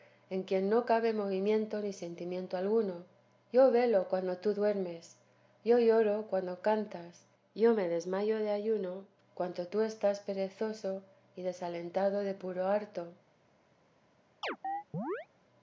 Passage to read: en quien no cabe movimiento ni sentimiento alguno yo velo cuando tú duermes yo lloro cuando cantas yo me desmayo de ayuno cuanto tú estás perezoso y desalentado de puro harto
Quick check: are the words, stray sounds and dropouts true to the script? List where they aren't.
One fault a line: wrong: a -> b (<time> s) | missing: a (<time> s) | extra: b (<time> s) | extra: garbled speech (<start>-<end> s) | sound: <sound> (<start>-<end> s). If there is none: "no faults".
sound: chirp (14.4-15.3 s)